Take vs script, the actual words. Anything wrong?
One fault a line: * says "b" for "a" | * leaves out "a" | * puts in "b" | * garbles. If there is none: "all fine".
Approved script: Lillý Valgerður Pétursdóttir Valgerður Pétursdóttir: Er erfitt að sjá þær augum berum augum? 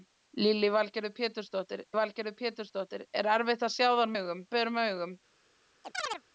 all fine